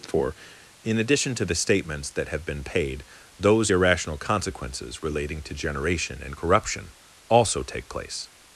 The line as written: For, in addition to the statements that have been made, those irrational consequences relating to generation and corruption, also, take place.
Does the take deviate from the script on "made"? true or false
true